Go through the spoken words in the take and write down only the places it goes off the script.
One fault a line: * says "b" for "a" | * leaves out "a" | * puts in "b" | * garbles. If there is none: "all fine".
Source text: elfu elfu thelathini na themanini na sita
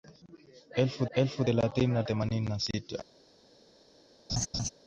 all fine